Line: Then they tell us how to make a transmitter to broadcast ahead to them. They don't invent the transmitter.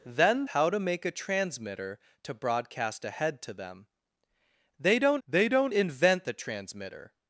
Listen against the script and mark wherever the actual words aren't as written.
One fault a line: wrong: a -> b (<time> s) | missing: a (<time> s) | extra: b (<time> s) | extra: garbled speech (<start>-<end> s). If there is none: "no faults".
missing: they tell us (0.5 s)
extra: they don't (5.3 s)